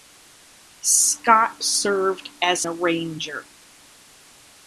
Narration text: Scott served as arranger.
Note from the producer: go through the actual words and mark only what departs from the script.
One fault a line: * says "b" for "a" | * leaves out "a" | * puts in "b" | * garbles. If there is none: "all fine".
all fine